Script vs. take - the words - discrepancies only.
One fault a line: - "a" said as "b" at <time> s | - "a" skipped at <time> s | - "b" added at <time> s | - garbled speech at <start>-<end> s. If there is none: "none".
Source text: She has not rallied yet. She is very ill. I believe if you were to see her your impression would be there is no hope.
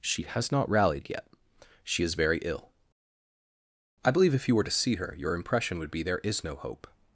none